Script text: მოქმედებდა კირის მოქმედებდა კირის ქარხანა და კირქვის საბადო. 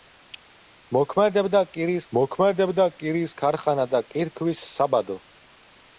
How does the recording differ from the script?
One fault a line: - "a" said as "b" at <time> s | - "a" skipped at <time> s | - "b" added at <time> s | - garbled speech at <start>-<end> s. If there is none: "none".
none